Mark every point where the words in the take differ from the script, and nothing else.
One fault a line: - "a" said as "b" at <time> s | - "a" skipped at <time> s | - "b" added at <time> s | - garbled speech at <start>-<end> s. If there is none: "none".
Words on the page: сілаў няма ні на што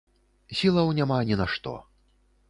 none